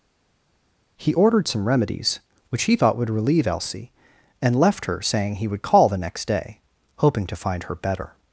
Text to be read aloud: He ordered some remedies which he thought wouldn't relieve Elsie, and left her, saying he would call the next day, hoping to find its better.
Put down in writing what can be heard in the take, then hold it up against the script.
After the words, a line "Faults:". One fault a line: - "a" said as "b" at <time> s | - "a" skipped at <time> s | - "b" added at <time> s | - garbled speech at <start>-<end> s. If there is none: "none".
He ordered some remedies which he thought would relieve Elsie, and left her, saying he would call the next day, hoping to find her better.
Faults:
- "wouldn't" said as "would" at 3.0 s
- "its" said as "her" at 7.6 s